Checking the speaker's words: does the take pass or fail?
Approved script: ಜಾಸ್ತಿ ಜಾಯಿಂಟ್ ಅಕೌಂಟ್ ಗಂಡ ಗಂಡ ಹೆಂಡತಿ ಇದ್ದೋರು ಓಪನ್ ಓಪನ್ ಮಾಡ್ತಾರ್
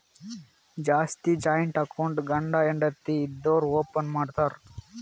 fail